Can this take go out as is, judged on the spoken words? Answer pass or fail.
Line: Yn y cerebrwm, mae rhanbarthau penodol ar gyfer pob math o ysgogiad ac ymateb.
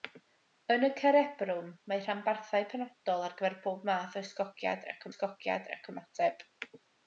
fail